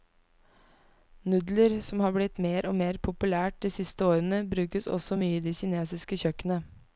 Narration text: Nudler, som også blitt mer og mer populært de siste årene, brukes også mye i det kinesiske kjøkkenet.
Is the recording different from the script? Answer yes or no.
yes